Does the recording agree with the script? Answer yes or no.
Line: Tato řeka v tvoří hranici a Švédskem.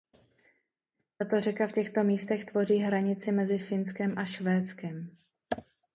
no